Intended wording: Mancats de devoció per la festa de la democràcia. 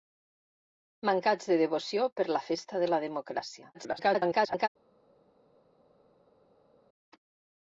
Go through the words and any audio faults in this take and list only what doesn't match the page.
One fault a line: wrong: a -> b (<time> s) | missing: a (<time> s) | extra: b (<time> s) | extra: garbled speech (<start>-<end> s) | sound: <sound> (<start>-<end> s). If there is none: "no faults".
extra: garbled speech (3.7-4.7 s)